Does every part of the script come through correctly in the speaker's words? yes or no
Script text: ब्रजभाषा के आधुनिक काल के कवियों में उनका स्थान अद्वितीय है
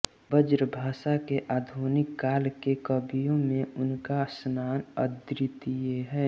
yes